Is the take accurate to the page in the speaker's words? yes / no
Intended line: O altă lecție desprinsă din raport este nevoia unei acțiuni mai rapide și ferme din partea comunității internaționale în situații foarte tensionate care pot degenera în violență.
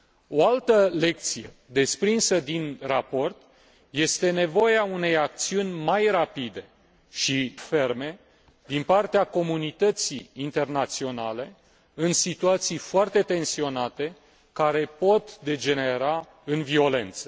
yes